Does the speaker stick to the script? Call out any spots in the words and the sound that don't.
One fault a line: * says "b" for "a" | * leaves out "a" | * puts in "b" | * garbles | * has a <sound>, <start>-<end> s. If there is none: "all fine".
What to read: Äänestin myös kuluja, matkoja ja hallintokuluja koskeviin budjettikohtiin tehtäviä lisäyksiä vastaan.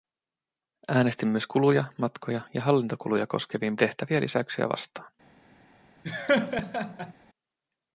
* leaves out "budjettikohtiin"
* has a laugh, 6.0-7.1 s